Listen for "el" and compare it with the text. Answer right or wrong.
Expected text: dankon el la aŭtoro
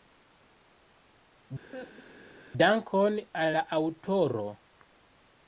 wrong